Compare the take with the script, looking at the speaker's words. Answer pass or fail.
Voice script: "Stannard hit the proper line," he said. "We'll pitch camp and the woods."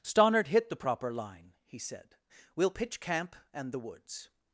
pass